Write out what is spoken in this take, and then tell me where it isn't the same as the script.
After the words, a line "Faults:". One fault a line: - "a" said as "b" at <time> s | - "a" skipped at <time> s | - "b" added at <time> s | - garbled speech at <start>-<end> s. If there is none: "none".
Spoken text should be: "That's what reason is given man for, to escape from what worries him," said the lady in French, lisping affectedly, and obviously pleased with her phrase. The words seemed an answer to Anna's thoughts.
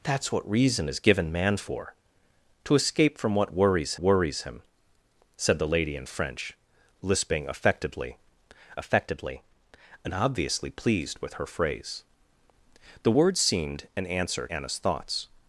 "That's what reason is given man for, to escape from what worries worries him," said the lady in French, lisping affectedly affectedly, and obviously pleased with her phrase. The words seemed an answer Anna's thoughts.
Faults:
- "worries" added at 4.0 s
- "affectedly" added at 8.8 s
- "to" skipped at 14.5 s